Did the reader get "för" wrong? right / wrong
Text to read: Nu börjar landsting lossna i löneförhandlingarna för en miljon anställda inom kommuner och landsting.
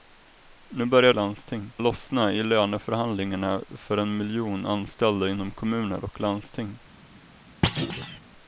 right